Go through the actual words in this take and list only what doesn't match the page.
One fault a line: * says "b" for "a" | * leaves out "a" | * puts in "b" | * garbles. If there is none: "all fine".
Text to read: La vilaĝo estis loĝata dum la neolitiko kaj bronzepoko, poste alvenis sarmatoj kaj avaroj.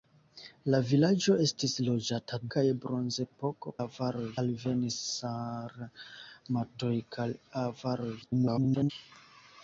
* leaves out "dum la neolitiko"
* says "avaroj" for "poste"
* garbles